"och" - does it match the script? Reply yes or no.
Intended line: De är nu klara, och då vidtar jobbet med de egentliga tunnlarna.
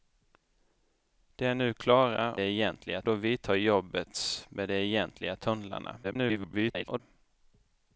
no